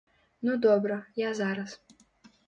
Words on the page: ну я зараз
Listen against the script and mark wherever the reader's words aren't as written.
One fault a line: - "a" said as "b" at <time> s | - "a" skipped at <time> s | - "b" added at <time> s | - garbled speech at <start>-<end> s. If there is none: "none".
- "добра" added at 0.6 s